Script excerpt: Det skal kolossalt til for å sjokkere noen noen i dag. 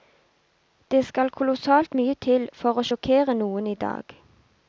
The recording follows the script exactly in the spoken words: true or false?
false